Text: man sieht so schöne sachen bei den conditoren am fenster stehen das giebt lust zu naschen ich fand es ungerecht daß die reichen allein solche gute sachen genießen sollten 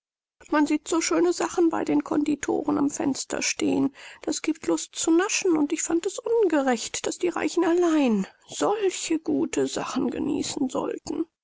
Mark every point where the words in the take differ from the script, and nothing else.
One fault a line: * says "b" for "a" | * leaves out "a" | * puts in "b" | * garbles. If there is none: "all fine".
* puts in "und"